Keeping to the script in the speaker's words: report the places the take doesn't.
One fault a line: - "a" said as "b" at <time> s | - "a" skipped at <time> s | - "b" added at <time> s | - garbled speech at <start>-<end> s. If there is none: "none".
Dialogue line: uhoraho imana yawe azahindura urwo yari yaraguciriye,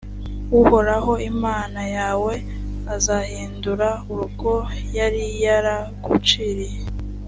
none